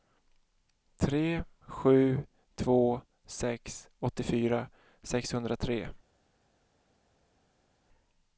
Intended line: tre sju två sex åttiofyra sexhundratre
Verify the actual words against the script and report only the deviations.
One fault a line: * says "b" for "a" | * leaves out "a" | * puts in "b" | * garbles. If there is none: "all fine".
all fine